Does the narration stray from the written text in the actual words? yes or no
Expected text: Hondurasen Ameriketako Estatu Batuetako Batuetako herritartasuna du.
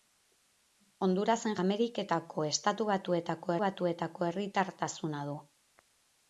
no